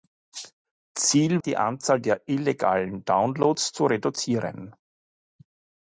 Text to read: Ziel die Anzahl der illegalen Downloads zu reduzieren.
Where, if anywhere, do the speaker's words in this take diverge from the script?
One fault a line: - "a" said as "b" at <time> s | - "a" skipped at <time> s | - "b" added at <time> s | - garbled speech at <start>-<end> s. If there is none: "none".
none